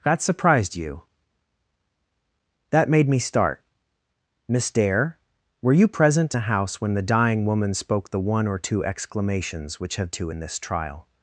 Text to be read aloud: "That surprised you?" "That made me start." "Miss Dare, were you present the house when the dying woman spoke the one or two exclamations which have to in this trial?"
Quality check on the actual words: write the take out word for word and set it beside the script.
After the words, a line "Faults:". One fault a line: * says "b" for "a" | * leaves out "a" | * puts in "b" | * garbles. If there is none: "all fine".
"That surprised you?" "That made me start." "Miss Dare, were you present the house when the dying woman spoke the one or two exclamations which have to in this trial?"
Faults:
all fine